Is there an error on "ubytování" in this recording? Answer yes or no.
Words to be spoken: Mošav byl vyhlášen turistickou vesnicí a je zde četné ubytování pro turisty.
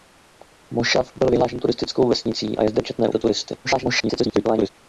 yes